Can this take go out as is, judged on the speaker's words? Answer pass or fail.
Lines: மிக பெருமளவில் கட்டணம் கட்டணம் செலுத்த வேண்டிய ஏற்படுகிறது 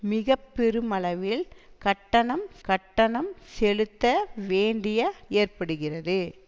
pass